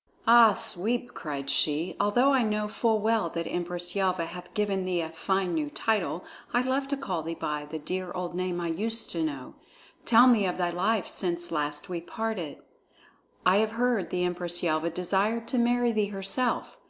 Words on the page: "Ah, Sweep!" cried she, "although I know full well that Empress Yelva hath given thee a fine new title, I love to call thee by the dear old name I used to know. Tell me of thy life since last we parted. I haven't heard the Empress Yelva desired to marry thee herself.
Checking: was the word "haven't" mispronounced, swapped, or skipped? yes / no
yes